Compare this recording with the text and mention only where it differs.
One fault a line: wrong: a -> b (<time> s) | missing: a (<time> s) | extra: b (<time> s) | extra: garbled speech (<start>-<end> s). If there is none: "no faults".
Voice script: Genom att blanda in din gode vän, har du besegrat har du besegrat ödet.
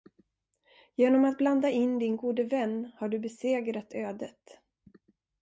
missing: har du besegrat (3.9 s)